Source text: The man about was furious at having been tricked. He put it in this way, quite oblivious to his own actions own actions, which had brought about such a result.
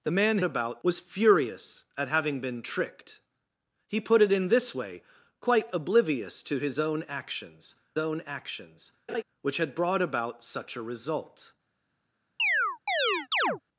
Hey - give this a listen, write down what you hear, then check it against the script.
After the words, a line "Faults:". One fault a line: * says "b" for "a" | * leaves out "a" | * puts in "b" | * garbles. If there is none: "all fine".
The man about was furious at having been tricked. He put it in this way, quite oblivious to his own actions own actions, which had brought about such a result.
Faults:
all fine